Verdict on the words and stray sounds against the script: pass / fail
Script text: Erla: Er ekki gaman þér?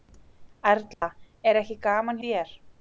fail